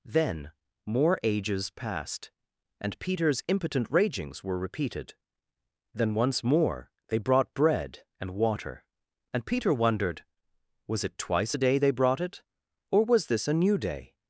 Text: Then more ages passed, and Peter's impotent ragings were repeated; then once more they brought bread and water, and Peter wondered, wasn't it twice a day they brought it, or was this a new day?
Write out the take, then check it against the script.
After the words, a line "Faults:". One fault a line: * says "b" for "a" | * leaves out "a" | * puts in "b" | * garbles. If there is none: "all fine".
Then more ages passed, and Peter's impotent ragings were repeated; then once more they brought bread and water, and Peter wondered, was it twice a day they brought it, or was this a new day?
Faults:
* says "was" for "wasn't"